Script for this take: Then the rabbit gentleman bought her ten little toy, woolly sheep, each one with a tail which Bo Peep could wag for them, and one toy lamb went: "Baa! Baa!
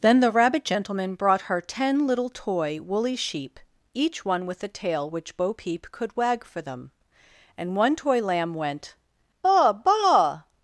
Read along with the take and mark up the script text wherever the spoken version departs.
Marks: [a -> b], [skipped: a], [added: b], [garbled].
Then the rabbit gentleman [bought -> brought] her ten little toy, woolly sheep, each one with a tail which Bo Peep could wag for them, and one toy lamb went: "Baa! Baa!